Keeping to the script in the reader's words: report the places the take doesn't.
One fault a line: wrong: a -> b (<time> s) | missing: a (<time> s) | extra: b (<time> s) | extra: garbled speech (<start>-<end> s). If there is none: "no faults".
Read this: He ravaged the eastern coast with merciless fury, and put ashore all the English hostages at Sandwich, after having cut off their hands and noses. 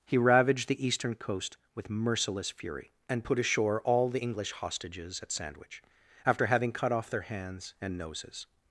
no faults